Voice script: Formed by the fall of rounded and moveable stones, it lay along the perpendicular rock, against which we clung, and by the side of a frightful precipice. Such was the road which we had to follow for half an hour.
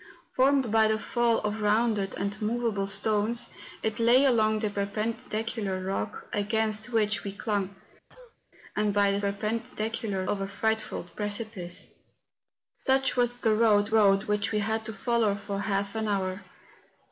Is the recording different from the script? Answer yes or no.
yes